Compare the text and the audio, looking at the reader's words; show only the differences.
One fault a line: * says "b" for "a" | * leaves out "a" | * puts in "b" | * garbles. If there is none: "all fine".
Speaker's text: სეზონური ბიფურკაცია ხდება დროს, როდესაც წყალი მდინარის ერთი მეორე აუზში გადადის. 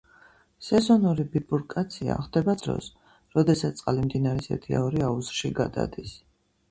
all fine